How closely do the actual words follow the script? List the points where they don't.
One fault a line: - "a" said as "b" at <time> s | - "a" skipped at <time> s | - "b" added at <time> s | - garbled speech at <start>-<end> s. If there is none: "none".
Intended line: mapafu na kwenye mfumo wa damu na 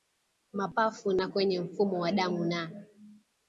none